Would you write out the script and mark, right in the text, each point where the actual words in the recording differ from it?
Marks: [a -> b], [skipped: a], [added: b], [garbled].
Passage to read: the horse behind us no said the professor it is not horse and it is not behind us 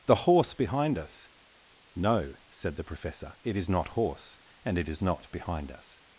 the horse behind us no said the professor it is not horse and it is not behind us